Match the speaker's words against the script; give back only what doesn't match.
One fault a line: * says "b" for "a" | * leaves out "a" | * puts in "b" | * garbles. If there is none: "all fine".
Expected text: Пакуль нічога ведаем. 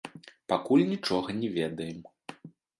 * puts in "не"